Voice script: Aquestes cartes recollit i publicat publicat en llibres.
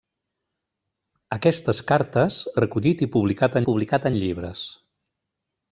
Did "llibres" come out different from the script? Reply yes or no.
no